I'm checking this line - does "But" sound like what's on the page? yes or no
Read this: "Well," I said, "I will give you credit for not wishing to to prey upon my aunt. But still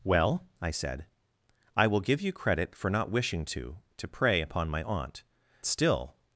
no